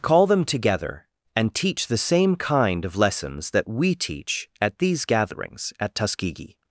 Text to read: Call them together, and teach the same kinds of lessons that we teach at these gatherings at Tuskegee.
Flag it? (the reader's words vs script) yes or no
yes